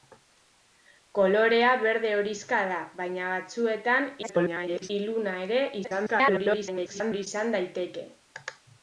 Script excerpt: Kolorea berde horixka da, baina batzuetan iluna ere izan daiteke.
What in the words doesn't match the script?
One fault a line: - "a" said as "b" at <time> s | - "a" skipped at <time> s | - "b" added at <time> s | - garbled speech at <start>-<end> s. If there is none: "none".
- garbled speech at 4.2-4.9 s
- garbled speech at 5.8-7.3 s